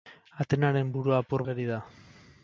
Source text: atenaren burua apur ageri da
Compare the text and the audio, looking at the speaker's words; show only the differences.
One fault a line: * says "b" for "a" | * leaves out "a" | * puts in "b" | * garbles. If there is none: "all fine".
all fine